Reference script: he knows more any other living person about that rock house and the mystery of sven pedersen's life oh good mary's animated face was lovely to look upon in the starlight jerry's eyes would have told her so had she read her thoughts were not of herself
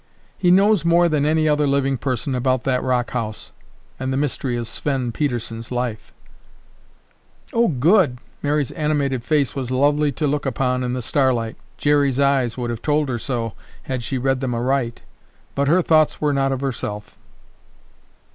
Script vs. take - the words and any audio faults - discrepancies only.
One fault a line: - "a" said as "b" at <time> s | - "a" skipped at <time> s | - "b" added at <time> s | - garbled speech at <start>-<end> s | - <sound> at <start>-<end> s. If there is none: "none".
- "than" added at 1.1 s
- "them aright but" added at 14.4 s